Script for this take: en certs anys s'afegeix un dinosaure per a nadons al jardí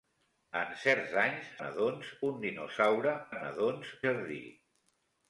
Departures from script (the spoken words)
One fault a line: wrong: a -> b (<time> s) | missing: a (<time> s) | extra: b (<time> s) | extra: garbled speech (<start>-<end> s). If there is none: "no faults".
wrong: s'afegeix -> nadons (1.6 s)
missing: per (3.1 s)
missing: al (4.0 s)